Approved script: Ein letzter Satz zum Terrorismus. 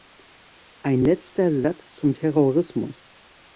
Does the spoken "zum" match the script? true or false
true